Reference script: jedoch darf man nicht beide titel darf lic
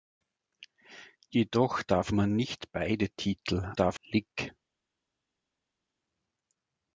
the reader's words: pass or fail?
pass